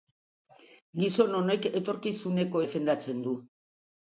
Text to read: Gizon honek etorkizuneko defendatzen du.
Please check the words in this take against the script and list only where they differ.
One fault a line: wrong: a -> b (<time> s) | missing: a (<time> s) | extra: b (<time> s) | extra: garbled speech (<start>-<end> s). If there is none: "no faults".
no faults